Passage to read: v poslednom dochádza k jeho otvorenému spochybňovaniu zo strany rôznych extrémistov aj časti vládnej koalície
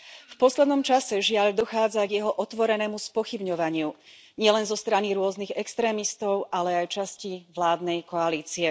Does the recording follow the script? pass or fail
fail